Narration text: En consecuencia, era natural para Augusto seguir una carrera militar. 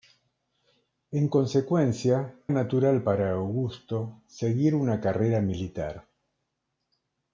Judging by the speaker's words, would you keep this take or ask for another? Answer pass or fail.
fail